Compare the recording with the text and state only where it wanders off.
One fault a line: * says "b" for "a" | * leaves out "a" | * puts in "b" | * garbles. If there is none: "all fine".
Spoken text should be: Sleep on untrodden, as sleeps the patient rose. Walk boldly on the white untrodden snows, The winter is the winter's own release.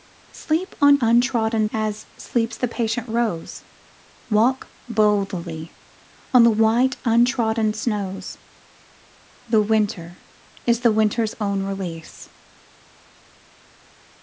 all fine